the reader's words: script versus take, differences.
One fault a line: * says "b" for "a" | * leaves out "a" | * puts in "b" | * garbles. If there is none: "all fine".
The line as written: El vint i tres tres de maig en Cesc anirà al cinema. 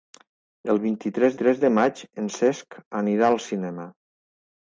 all fine